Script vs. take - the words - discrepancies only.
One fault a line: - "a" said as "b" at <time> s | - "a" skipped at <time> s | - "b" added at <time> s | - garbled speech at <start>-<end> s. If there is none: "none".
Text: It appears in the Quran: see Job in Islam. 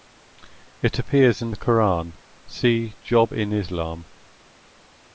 none